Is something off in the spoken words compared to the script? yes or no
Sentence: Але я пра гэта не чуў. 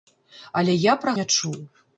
yes